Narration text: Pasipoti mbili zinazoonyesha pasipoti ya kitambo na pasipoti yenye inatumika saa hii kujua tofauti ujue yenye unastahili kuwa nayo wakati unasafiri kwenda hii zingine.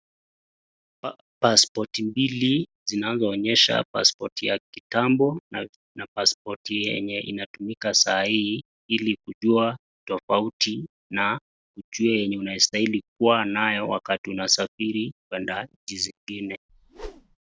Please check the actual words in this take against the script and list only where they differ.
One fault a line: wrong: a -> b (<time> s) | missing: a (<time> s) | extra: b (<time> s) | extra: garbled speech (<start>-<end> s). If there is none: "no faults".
extra: ili (8.9 s)
extra: na (11.1 s)
wrong: hii -> nchi (15.8 s)